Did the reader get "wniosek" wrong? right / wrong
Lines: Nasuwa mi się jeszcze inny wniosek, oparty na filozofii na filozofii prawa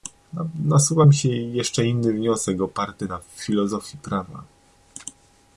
right